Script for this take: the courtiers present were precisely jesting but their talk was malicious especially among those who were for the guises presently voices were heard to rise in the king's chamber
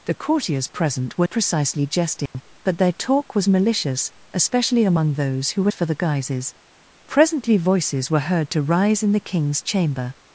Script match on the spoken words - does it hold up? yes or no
yes